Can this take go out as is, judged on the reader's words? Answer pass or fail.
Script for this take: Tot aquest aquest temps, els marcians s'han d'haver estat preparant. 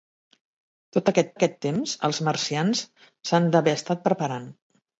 pass